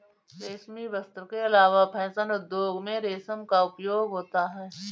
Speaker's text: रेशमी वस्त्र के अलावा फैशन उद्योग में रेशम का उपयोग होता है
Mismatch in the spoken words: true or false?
false